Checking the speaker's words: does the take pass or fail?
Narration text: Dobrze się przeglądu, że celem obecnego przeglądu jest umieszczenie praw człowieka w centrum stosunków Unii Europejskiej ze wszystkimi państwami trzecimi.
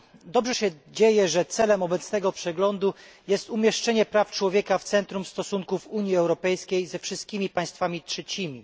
fail